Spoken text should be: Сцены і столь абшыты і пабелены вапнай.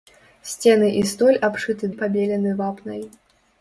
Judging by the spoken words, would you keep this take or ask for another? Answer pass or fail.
pass